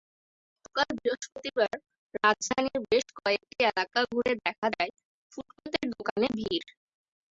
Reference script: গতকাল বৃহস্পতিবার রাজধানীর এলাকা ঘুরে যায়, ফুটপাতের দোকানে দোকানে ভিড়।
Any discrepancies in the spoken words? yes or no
yes